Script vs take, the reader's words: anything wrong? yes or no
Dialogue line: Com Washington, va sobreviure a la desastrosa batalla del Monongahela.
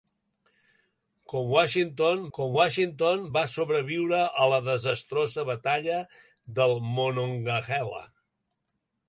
yes